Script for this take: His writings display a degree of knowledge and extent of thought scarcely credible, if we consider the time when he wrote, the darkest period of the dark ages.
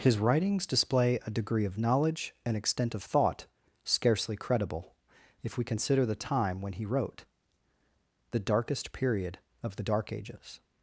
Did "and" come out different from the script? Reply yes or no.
no